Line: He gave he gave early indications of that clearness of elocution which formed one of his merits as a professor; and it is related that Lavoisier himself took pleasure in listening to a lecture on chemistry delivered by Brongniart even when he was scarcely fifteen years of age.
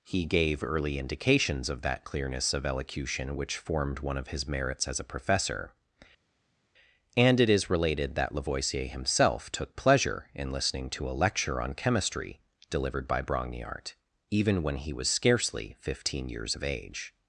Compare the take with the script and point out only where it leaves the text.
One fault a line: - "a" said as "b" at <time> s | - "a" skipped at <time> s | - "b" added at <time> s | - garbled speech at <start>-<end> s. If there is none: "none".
- "he gave" skipped at 0.6 s